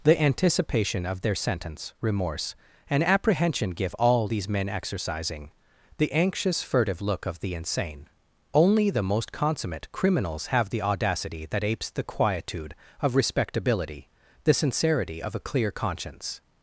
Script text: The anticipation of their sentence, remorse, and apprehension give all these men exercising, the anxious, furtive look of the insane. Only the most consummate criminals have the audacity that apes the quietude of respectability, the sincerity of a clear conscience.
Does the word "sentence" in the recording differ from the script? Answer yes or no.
no